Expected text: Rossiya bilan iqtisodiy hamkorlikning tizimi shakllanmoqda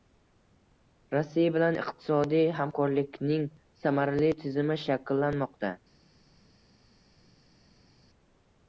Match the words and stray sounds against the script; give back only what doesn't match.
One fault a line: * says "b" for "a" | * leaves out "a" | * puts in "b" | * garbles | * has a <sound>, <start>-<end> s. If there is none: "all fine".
* puts in "samarali"